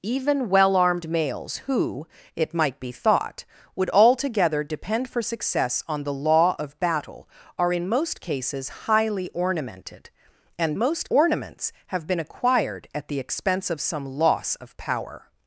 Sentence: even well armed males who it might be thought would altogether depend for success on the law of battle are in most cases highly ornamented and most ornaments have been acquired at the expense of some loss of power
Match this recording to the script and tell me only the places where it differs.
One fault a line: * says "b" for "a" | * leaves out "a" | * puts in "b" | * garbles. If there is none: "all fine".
all fine